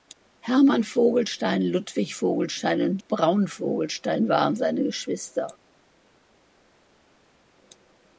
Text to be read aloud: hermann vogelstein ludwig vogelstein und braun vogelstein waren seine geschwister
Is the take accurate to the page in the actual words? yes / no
yes